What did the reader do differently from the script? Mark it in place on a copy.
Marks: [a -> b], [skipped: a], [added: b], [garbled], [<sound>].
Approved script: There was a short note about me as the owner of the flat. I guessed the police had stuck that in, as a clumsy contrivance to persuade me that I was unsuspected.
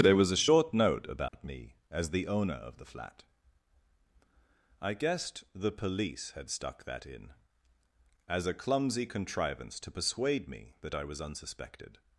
There was a short note about [dropout] me as the owner of the flat. I guessed the police had stuck that in, as a clumsy contrivance to persuade me that I was unsuspected.